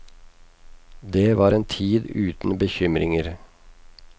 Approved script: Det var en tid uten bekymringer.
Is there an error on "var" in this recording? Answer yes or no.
no